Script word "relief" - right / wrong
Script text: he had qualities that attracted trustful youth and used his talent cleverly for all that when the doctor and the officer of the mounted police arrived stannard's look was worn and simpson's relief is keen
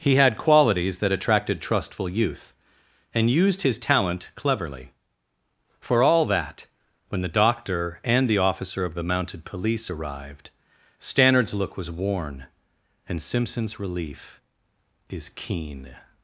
right